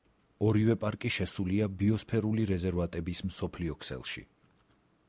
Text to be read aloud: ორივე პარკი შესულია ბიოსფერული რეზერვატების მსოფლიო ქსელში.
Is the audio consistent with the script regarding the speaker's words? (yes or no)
yes